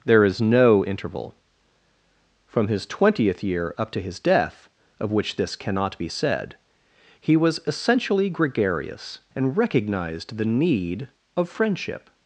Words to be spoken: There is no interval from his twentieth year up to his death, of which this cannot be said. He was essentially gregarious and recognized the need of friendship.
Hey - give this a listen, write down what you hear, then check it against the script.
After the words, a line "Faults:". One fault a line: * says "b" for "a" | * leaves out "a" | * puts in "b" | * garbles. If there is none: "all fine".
There is no interval from his twentieth year up to his death, of which this cannot be said. He was essentially gregarious and recognized the need of friendship.
Faults:
all fine